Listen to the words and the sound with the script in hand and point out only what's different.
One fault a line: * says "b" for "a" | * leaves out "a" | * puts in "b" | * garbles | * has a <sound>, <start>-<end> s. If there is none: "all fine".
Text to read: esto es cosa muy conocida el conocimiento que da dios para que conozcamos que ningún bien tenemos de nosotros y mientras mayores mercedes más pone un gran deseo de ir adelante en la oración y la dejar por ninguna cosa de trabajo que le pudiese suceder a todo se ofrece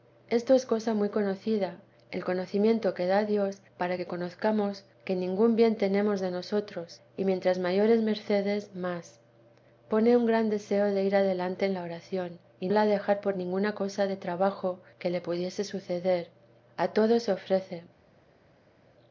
all fine